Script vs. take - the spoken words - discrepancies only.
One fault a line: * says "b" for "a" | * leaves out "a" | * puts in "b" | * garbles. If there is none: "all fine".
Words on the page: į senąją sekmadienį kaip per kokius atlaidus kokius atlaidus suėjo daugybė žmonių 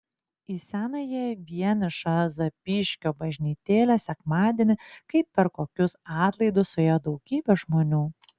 * puts in "vienišą zapyškio bažnytėlę"
* leaves out "kokius atlaidus"